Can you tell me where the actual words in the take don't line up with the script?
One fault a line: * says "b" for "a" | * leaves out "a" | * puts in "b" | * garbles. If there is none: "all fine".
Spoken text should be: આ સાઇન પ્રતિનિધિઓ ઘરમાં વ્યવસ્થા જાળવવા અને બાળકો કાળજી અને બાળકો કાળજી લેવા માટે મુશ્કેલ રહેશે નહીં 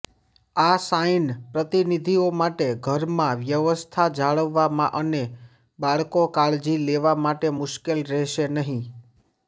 * puts in "માટે"
* leaves out "અને બાળકો કાળજી"